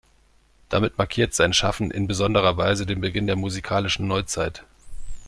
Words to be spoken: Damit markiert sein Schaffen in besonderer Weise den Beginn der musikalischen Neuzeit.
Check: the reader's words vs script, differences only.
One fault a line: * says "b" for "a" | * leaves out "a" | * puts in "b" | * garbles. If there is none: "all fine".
all fine